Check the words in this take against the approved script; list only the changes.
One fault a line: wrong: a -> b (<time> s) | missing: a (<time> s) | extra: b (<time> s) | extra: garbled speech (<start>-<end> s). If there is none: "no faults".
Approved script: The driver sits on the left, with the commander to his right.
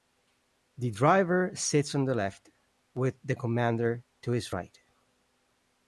no faults